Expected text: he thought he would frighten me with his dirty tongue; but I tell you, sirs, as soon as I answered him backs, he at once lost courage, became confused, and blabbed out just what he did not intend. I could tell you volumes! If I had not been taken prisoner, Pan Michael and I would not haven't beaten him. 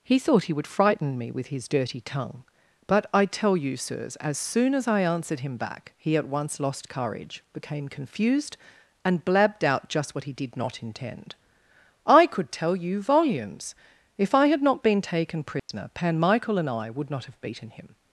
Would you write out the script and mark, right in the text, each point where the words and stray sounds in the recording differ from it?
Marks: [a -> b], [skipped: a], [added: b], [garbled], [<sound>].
he thought he would frighten me with his dirty tongue; but I tell you, sirs, as soon as I answered him [backs, -> back] he at once lost courage, became confused, and blabbed out just what he did not intend. I could tell you volumes! If I had not been taken prisoner, [dropout] Pan Michael and I would not [haven't -> have] beaten him.